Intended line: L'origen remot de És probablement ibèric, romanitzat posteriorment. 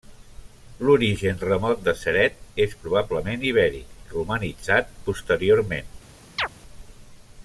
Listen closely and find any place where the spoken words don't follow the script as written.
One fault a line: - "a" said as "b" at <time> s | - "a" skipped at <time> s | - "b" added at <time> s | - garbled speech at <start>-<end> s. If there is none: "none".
- "Ceret" added at 2.0 s